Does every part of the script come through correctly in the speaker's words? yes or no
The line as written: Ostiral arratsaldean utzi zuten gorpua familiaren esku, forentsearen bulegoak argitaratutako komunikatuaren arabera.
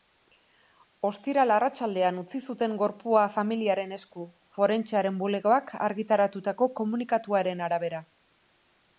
yes